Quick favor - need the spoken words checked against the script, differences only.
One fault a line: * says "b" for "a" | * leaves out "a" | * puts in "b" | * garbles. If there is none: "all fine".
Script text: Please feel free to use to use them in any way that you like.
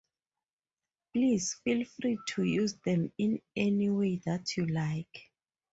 * leaves out "to use"